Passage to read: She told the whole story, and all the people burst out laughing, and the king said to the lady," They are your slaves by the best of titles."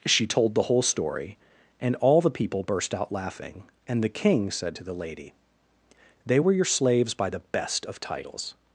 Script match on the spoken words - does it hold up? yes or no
no